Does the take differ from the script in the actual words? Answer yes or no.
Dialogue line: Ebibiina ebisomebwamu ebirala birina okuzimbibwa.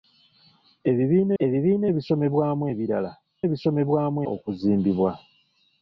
yes